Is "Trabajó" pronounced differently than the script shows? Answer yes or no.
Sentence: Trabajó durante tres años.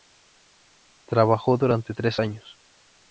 no